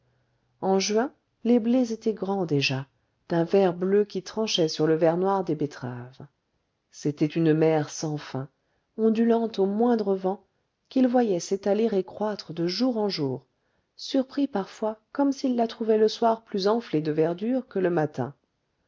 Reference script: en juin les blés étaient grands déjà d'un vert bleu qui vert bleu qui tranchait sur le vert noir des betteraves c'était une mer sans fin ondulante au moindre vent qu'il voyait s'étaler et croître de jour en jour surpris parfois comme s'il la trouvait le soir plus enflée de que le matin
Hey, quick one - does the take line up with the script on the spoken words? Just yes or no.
no